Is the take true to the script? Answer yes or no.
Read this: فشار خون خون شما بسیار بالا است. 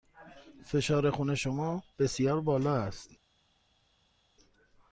no